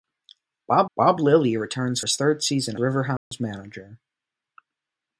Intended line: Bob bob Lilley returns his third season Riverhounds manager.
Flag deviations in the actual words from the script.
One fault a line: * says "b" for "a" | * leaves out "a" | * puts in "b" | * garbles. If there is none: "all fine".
all fine